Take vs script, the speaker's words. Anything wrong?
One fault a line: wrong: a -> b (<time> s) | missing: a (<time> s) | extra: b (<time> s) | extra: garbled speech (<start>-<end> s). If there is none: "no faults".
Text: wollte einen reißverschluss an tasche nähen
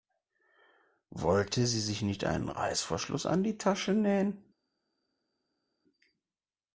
extra: sie sich nicht (1.7 s)
extra: die (3.4 s)